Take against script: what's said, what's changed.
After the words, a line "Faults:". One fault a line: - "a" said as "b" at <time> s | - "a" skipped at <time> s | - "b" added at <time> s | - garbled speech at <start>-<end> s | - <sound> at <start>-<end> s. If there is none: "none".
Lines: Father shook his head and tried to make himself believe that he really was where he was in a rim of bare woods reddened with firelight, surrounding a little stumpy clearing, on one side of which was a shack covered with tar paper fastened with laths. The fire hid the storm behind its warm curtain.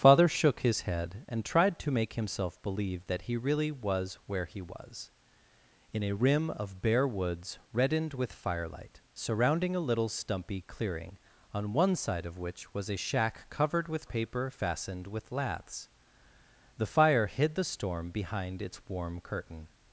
Father shook his head and tried to make himself believe that he really was where he was in a rim of bare woods reddened with firelight, surrounding a little stumpy clearing, on one side of which was a shack covered with paper fastened with laths. The fire hid the storm behind its warm curtain.
Faults:
- "tar" skipped at 14.1 s